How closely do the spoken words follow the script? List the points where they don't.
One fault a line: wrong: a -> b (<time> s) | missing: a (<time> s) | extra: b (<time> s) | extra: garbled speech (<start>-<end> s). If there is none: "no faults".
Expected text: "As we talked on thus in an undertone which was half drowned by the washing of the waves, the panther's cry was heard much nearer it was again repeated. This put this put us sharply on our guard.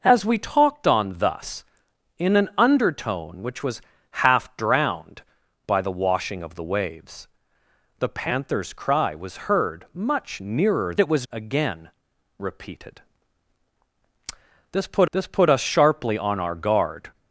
no faults